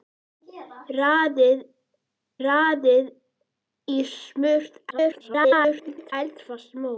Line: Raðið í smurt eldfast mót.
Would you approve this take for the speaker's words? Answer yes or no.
no